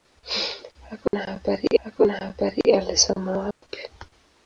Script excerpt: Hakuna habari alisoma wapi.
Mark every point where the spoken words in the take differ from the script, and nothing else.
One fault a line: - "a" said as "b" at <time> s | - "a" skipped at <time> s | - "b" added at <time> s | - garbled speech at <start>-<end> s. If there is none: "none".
- "hakuna habari" added at 1.8 s